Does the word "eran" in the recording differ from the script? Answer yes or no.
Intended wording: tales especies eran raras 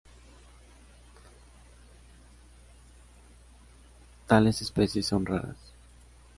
yes